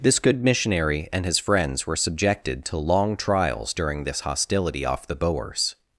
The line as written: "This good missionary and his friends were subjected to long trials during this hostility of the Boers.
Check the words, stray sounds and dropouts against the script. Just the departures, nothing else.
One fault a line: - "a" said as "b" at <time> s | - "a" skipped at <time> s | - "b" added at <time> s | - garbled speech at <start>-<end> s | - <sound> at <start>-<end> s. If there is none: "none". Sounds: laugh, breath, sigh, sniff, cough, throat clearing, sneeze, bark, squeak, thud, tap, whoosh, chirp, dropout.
- "of" said as "off" at 4.9 s